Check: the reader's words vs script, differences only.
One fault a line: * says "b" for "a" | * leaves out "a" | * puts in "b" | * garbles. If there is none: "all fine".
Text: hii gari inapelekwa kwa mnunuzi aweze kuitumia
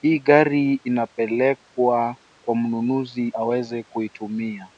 all fine